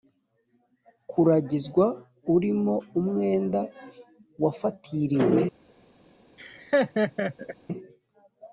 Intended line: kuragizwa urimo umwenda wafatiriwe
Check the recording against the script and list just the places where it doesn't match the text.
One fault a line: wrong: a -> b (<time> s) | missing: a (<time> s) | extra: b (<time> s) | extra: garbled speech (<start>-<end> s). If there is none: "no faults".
no faults